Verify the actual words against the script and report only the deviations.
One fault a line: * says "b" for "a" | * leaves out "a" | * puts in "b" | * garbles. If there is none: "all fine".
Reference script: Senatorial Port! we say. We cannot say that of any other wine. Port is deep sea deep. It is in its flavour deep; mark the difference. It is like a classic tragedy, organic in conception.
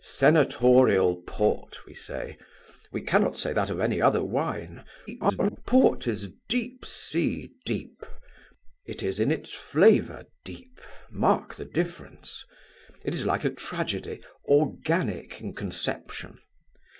* garbles
* leaves out "classic"